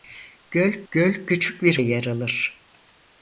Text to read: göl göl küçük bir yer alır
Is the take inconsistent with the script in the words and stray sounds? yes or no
no